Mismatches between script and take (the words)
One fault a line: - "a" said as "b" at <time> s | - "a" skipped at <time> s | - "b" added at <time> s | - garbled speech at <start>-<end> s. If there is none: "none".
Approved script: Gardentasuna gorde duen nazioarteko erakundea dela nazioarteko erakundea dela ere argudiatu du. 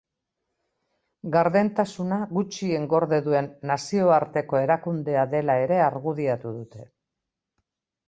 - "gutxien" added at 2.4 s
- "nazioarteko erakundea dela" skipped at 5.6 s
- "du" said as "dute" at 6.6 s